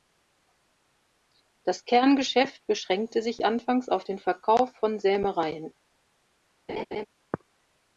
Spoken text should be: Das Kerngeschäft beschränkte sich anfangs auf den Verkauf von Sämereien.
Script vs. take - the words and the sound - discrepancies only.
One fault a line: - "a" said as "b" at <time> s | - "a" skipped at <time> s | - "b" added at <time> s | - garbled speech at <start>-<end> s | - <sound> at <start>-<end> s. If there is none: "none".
- laugh at 6.7-7.1 s